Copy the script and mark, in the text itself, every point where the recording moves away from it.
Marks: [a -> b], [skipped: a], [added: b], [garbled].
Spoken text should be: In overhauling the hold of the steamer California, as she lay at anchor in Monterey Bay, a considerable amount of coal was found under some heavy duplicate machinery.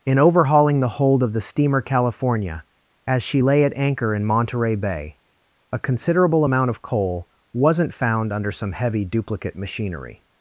In overhauling the hold of the steamer California, as she lay at anchor in Monterey Bay, a considerable amount of coal [was -> wasn't] found under some heavy duplicate machinery.